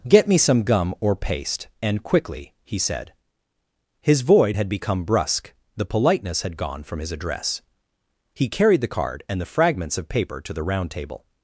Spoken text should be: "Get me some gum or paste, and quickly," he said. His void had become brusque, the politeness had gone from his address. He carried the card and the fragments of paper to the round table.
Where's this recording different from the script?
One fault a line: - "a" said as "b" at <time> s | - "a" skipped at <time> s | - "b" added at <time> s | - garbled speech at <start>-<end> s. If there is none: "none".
none